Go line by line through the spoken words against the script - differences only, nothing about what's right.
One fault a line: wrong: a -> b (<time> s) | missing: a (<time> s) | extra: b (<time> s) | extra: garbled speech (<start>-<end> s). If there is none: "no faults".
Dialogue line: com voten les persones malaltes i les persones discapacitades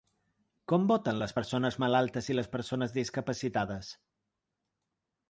no faults